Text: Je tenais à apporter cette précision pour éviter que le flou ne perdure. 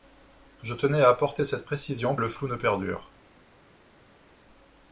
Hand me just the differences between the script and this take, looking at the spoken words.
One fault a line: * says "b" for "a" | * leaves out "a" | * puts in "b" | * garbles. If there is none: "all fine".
* leaves out "pour éviter que"